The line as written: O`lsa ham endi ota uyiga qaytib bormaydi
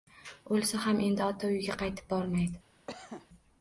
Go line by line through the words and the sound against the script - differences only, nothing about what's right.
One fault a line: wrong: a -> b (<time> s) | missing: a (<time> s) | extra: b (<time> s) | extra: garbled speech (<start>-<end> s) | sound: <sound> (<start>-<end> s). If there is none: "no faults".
sound: cough (2.9-3.3 s)